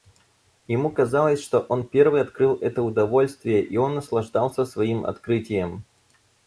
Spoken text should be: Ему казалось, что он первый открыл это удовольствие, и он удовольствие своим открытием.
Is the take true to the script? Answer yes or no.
no